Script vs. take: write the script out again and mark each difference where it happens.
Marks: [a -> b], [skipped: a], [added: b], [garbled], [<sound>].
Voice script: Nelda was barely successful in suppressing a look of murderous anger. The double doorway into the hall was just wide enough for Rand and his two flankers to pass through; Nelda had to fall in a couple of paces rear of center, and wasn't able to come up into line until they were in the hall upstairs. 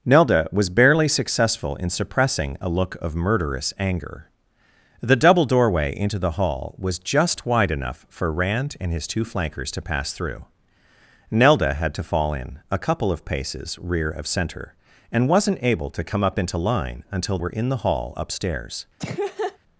Nelda was barely successful in suppressing a look of murderous anger. The double doorway into the hall was just wide enough for Rand and his two flankers to pass through; Nelda had to fall in a couple of paces rear of center, and wasn't able to come up into line until [skipped: they] were in the hall upstairs. [laugh]